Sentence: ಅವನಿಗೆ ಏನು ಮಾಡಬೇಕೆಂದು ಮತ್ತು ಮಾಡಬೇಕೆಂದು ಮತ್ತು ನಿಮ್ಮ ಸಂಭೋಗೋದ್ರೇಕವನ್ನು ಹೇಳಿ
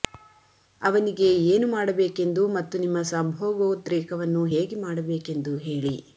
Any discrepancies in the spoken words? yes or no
yes